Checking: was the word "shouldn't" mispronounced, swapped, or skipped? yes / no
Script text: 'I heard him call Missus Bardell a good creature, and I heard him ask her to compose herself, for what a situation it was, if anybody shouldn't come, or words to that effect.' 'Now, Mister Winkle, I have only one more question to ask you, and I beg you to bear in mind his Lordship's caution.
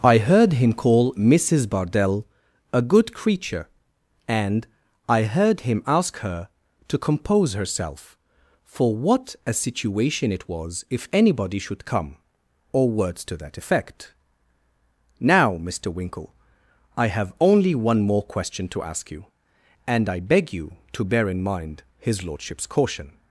yes